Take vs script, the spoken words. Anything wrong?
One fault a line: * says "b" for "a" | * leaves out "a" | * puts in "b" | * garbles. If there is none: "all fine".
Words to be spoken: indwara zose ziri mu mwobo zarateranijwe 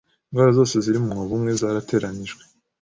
* puts in "umwe"